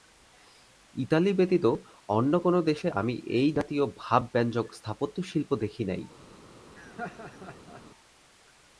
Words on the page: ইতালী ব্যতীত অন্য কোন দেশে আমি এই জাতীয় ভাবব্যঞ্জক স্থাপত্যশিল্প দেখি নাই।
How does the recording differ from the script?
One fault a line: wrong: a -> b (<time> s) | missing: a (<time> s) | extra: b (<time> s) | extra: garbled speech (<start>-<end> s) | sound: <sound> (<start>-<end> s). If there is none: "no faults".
sound: laugh (6.7-7.8 s)